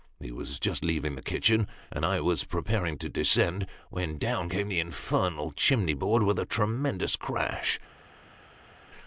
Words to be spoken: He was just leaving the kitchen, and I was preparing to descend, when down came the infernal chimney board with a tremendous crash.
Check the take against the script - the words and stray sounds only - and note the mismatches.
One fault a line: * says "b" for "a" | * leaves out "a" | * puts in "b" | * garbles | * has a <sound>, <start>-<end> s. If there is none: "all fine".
all fine